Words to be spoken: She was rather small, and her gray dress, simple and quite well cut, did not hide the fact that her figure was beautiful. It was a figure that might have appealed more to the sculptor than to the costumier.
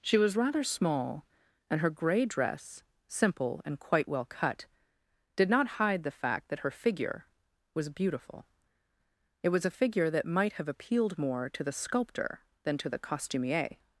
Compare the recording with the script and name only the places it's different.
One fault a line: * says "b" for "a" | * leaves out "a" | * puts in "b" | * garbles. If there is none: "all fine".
all fine